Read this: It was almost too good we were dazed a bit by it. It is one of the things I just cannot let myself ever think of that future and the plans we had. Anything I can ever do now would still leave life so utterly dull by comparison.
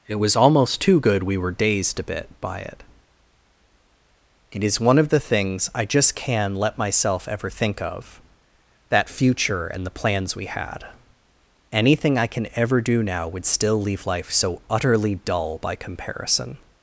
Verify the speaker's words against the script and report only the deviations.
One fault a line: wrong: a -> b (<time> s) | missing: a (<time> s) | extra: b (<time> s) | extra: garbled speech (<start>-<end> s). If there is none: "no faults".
wrong: cannot -> can (6.2 s)